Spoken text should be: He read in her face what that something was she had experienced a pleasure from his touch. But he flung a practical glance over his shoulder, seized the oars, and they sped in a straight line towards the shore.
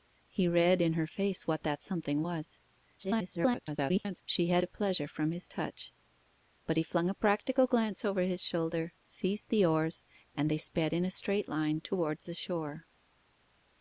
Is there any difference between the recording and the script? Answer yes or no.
yes